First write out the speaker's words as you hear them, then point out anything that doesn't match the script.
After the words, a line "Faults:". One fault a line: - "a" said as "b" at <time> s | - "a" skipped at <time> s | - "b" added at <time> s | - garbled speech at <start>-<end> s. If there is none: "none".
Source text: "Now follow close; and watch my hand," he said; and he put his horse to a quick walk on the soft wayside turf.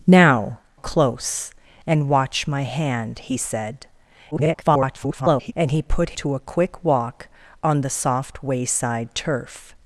"Now close; and watch my hand," he said; [garbled] and he put to a quick walk on the soft wayside turf.
Faults:
- "follow" skipped at 0.6 s
- garbled speech at 4.3-5.5 s
- "his horse" skipped at 6.2 s